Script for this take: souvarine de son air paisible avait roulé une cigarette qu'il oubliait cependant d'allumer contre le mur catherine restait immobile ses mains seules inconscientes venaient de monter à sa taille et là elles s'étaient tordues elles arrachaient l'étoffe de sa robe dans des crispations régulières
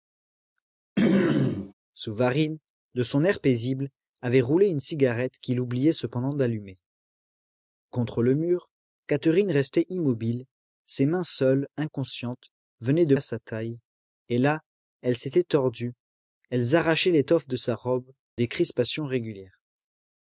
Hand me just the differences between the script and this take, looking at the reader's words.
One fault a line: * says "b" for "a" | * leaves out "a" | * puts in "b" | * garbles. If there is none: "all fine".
* leaves out "monter"
* leaves out "dans"